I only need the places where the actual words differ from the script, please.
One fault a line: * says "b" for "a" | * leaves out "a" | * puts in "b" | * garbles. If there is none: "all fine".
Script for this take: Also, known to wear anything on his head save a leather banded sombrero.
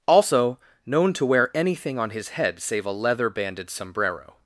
all fine